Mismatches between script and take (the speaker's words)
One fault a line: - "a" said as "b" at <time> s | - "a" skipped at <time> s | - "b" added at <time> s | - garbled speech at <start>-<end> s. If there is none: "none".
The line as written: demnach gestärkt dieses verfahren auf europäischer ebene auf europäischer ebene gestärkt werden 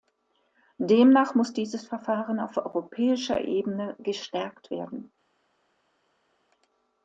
- "gestärkt" said as "muss" at 1.3 s
- "auf europäischer ebene" skipped at 4.0 s